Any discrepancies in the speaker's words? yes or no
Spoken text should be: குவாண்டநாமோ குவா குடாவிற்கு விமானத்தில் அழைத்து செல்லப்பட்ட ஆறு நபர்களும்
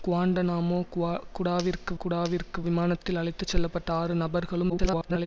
yes